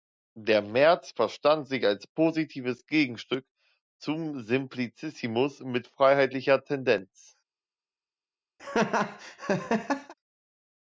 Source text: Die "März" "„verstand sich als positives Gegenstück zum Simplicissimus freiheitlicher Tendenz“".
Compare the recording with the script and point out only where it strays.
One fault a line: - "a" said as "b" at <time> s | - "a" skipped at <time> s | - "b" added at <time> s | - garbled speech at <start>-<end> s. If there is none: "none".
- "Die" said as "Der" at 0.3 s
- "mit" added at 5.6 s